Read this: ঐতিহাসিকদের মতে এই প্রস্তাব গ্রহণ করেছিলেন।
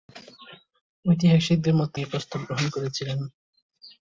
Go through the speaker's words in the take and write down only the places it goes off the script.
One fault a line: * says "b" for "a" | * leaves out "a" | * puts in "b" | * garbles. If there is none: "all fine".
all fine